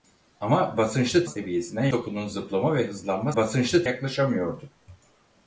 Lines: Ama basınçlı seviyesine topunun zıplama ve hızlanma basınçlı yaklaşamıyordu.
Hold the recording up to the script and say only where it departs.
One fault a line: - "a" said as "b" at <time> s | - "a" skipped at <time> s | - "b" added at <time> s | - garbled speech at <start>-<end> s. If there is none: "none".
none